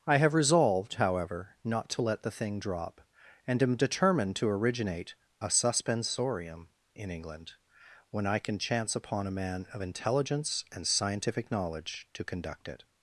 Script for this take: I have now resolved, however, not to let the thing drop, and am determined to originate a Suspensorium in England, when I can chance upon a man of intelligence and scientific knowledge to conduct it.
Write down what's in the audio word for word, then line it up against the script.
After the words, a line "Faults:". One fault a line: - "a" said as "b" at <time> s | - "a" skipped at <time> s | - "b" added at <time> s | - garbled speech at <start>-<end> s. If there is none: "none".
I have resolved, however, not to let the thing drop, and am determined to originate a Suspensorium in England, when I can chance upon a man of intelligence and scientific knowledge to conduct it.
Faults:
- "now" skipped at 0.3 s